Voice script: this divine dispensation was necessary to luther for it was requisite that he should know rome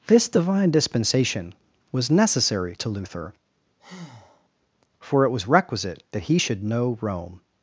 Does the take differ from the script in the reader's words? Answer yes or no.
no